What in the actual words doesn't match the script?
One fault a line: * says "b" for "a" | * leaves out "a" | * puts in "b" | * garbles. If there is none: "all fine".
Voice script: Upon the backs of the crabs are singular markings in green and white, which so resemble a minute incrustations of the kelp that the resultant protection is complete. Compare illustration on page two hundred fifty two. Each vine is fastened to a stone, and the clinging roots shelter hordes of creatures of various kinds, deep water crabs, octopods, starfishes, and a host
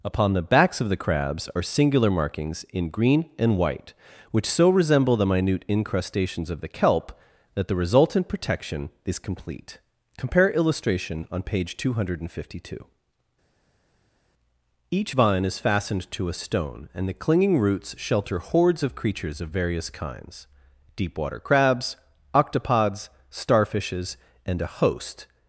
* says "the" for "a"